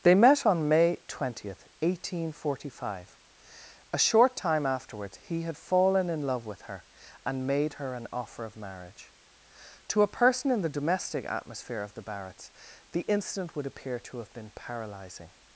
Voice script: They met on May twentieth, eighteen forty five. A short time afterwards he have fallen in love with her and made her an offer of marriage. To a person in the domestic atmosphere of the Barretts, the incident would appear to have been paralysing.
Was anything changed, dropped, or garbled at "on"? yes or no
no